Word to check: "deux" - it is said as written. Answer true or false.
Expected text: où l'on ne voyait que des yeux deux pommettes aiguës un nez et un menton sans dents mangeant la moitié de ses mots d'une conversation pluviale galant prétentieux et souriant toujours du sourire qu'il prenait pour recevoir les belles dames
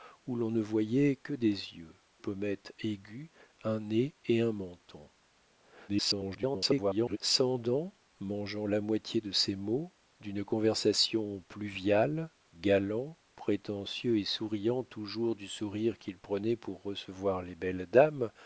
false